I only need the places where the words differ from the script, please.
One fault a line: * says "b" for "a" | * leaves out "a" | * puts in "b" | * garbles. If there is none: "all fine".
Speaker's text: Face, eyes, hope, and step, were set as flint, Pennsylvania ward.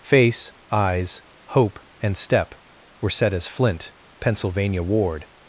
all fine